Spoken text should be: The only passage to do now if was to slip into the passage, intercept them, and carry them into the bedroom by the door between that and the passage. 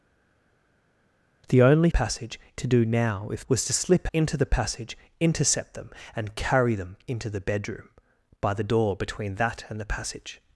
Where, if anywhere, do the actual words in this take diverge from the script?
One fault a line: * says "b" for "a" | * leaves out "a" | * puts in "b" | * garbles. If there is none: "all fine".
all fine